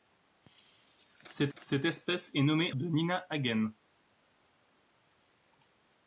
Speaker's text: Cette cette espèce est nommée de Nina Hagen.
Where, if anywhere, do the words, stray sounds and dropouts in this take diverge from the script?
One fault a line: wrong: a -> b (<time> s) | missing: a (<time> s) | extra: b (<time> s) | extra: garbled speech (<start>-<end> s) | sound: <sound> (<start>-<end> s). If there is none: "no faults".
no faults